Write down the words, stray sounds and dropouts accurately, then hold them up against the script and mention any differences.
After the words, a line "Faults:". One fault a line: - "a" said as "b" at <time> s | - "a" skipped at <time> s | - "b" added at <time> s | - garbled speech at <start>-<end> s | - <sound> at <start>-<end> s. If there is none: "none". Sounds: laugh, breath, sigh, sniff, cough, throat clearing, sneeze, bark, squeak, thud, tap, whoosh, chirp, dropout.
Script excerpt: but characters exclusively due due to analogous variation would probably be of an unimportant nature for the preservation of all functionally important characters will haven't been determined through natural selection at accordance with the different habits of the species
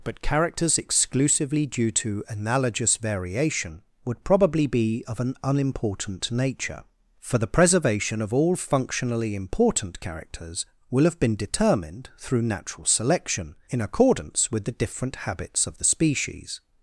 but characters exclusively due to analogous variation would probably be of an unimportant nature for the preservation of all functionally important characters will have been determined through natural selection in accordance with the different habits of the species
Faults:
- "due" skipped at 1.9 s
- "haven't" said as "have" at 11.0 s
- "at" said as "in" at 13.7 s